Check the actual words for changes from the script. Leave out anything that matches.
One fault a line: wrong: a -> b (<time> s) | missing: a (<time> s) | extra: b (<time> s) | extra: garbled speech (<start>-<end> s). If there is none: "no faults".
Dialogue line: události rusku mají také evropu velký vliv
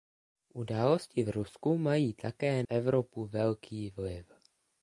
no faults